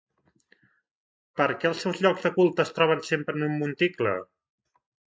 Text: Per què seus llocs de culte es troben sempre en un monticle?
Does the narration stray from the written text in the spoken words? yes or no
yes